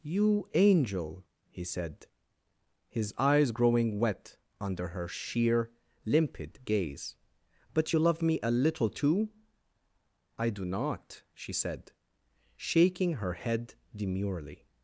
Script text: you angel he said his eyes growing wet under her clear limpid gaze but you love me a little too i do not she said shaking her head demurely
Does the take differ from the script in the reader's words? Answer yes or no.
yes